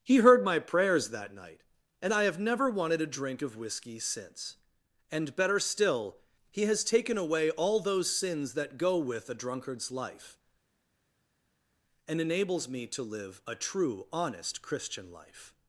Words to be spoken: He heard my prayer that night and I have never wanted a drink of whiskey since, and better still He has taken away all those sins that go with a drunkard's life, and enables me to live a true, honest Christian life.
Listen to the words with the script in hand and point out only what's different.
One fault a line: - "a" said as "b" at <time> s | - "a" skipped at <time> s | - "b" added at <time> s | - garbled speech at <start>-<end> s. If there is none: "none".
- "prayer" said as "prayers" at 0.6 s